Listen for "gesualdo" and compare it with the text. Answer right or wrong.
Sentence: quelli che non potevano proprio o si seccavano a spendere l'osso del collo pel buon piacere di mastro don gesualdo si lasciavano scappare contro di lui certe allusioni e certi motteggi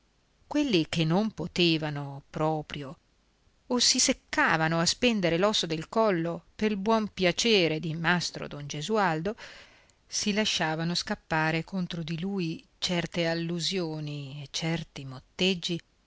right